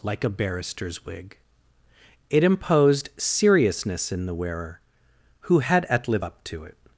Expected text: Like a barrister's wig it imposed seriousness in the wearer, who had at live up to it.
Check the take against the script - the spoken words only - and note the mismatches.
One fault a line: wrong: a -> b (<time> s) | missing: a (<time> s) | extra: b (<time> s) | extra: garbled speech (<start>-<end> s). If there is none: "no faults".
no faults